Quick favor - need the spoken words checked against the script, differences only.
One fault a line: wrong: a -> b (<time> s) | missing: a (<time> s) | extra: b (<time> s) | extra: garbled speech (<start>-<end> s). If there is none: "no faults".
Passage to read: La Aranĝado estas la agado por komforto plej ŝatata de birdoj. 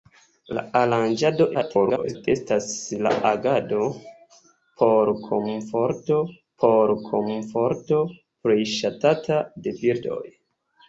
extra: garbled speech (1.5-2.3 s)
extra: por komforto (6.6 s)